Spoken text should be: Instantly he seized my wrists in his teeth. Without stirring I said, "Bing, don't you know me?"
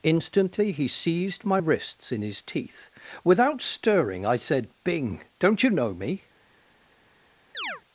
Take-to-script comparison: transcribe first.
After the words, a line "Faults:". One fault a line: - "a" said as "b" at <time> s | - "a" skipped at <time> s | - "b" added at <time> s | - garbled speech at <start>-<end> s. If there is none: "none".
Instantly he seized my wrists in his teeth. Without stirring I said, "Bing, don't you know me?"
Faults:
none